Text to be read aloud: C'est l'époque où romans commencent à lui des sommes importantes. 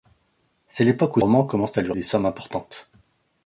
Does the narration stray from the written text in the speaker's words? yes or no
no